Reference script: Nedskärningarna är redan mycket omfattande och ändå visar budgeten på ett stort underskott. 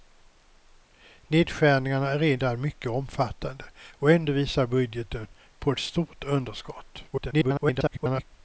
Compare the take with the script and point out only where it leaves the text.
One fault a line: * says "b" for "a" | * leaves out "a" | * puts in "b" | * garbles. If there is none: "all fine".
* garbles